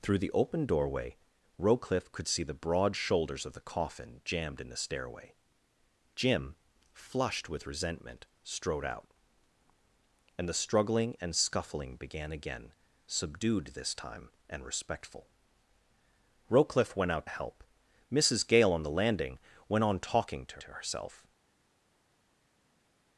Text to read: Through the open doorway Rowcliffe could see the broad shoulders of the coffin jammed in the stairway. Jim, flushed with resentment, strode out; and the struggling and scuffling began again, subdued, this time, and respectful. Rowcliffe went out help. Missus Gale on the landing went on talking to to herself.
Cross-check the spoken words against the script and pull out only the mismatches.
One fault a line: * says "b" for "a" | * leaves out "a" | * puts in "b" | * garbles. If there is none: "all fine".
all fine